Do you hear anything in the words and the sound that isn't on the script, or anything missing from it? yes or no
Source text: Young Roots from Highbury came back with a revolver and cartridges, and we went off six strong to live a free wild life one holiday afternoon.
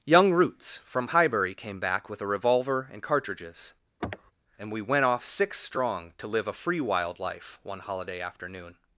yes